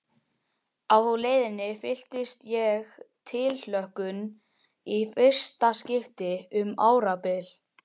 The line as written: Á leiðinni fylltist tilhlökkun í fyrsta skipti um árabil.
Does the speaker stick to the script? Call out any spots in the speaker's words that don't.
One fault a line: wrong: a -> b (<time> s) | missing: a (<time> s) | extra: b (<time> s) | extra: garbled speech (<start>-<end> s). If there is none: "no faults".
extra: ég (2.5 s)